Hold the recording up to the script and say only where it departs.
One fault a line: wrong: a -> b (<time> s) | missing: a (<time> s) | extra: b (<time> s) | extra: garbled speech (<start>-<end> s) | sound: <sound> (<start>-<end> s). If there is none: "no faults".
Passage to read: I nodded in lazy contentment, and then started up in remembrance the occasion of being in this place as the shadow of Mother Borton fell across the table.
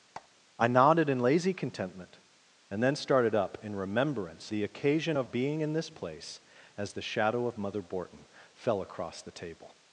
sound: squeak (0.1-0.3 s)